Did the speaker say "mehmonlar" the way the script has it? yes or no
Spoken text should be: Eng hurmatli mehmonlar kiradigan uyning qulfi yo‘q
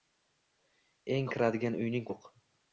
no